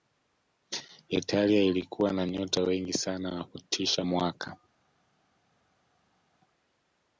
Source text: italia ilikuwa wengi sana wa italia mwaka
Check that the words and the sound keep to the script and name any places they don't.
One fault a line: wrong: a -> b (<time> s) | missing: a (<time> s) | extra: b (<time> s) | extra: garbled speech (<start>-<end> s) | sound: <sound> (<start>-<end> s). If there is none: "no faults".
extra: na nyota (2.1 s)
wrong: italia -> kutisha (3.5 s)